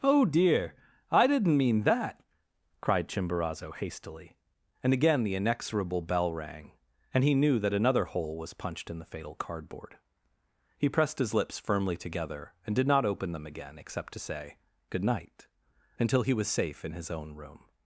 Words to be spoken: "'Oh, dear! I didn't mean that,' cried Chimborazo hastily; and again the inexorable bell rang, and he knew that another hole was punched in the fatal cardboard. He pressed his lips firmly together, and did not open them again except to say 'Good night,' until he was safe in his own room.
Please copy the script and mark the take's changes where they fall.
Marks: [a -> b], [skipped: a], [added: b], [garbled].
"'Oh, dear! I didn't mean that,' cried Chimborazo hastily; and again the inexorable bell rang, and he knew that another hole was punched in the fatal cardboard. He pressed his lips firmly together, and did not open them again except to say 'Good night,' until he was safe in his own room.